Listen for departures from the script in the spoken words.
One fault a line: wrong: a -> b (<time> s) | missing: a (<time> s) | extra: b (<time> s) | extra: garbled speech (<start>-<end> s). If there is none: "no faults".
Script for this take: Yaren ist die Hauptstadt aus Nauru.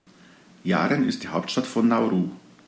wrong: aus -> von (1.7 s)